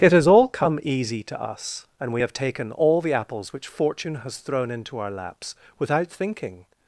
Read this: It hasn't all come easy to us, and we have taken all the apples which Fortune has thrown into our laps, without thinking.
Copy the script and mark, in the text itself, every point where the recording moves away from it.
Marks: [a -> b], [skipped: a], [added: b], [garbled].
It [hasn't -> has] all come easy to us, and we have taken all the apples which Fortune has thrown into our laps, without thinking.